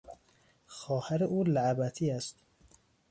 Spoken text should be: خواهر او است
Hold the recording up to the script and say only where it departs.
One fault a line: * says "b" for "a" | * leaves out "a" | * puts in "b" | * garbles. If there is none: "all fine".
* puts in "لعبتی"